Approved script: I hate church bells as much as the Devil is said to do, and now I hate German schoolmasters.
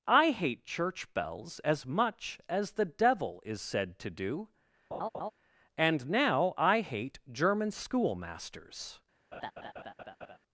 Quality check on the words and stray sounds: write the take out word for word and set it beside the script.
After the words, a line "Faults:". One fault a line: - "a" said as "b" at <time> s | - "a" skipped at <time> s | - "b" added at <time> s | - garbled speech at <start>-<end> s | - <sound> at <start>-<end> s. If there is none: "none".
I hate church bells as much as the Devil is said to do, and now I hate German schoolmasters.
Faults:
- laugh at 4.9-5.3 s
- laugh at 9.3-10.4 s